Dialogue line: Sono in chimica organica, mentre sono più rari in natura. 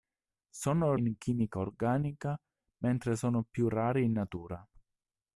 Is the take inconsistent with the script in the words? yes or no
no